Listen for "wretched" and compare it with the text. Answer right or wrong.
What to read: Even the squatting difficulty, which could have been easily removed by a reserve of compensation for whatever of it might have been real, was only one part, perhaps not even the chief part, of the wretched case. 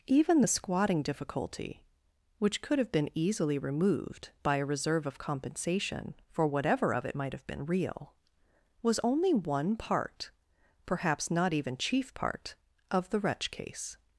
wrong